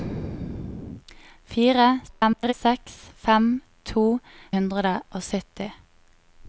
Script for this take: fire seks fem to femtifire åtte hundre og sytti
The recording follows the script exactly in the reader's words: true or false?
false